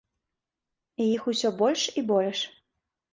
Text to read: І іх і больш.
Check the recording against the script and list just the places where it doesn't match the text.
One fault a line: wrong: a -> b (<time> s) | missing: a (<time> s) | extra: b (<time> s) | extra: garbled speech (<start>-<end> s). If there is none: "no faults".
extra: усё больш (1.3 s)